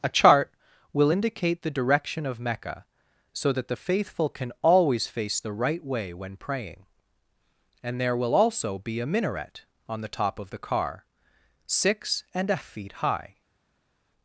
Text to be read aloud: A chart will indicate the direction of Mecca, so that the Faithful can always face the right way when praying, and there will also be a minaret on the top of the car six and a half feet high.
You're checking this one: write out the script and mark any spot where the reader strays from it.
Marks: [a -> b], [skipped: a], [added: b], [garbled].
A chart will indicate the direction of Mecca, so that the Faithful can always face the right way when praying, and there will also be a minaret on the top of the car six and a [skipped: half] feet high.